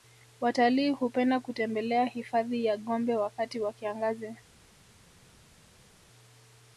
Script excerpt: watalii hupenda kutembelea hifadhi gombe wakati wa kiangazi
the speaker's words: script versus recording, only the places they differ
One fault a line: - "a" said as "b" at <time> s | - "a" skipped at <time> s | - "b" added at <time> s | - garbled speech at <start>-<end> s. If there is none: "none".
- "ya" added at 2.6 s